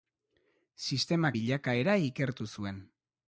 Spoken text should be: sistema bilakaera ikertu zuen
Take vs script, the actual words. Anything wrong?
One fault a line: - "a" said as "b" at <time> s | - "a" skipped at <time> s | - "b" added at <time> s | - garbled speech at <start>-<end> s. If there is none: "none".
none